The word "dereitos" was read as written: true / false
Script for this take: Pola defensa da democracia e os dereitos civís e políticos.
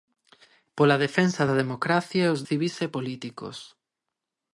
false